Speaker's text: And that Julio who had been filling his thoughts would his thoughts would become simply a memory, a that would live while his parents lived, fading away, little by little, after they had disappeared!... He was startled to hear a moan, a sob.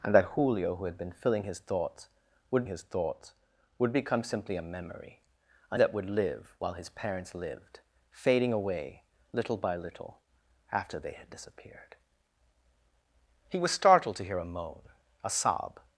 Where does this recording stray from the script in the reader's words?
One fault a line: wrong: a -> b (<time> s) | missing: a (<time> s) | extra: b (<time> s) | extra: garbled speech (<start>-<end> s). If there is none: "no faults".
no faults